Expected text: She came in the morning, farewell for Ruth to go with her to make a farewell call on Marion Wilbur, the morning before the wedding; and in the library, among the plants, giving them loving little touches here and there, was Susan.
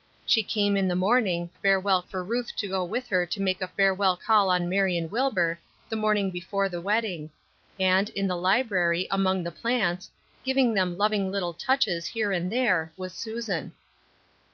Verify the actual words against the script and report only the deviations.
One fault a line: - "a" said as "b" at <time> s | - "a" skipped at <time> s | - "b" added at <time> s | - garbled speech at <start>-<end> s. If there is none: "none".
none